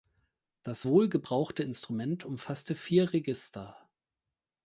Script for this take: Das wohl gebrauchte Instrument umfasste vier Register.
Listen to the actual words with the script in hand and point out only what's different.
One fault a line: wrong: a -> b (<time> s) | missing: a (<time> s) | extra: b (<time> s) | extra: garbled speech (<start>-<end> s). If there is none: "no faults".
no faults